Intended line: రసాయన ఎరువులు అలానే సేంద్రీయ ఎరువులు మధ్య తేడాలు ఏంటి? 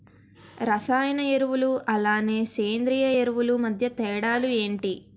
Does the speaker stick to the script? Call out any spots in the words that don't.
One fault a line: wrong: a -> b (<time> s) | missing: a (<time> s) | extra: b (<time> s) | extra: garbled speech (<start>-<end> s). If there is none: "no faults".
no faults